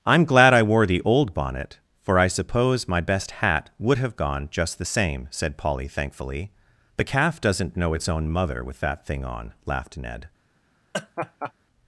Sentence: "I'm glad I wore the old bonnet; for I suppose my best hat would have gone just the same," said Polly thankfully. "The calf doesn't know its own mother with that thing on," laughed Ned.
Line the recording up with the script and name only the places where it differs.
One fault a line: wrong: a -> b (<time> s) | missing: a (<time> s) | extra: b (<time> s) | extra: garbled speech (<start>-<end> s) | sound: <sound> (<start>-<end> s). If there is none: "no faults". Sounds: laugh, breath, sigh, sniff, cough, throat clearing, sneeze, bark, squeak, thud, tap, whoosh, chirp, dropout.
sound: laugh (10.9-11.5 s)